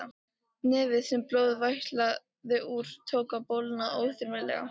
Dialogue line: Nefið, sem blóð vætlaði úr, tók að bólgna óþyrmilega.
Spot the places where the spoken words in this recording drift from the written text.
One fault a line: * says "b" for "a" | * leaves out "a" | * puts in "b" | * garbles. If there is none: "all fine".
all fine